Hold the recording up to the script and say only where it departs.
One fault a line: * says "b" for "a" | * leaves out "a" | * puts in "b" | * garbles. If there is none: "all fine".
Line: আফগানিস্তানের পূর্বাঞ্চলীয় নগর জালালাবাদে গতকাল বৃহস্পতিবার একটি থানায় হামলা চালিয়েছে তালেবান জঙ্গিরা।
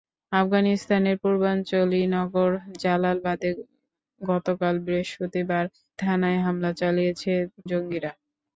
* leaves out "একটি"
* leaves out "তালেবান"